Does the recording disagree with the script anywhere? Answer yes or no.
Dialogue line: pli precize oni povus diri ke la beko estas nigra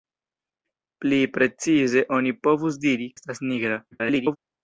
yes